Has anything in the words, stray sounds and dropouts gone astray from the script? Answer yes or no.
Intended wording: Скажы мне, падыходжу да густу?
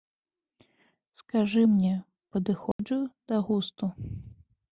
yes